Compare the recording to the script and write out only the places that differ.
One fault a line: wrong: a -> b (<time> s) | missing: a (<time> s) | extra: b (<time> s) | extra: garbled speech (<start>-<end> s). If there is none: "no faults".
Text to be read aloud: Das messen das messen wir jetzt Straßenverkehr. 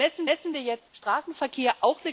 no faults